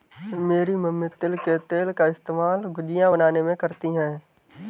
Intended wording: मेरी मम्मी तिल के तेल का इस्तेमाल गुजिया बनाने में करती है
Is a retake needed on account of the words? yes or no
no